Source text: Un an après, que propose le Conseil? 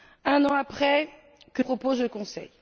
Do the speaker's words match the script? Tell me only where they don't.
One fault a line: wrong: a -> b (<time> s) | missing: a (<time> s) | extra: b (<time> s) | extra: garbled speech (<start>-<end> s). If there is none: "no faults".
no faults